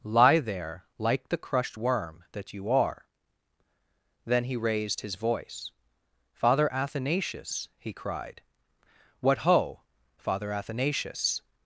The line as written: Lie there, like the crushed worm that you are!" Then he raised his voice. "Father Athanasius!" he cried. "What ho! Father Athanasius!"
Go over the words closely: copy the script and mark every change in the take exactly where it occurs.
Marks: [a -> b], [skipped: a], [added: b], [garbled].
Lie there, like the crushed worm that you are!" Then he raised his voice. "Father Athanasius!" he cried. "What ho! Father Athanasius!"